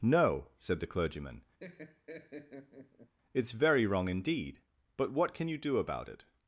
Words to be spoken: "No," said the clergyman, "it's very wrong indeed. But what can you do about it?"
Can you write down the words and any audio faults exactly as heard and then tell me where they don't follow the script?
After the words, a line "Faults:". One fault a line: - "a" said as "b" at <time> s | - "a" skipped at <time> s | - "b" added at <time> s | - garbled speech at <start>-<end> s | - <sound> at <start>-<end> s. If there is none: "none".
"No," said the clergyman, "it's very wrong indeed. But what can you do about it?"
Faults:
- laugh at 1.6-3.1 s